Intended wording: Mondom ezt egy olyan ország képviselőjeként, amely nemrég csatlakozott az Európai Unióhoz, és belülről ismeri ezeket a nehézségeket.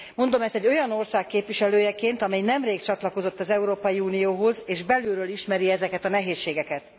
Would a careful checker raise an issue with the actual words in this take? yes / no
no